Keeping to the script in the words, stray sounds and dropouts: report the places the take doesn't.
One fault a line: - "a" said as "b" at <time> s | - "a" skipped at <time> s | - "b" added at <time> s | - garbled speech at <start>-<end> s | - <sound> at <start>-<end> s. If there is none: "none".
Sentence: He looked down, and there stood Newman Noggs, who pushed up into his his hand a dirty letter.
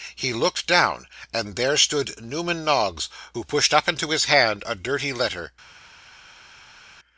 - "his" skipped at 4.2 s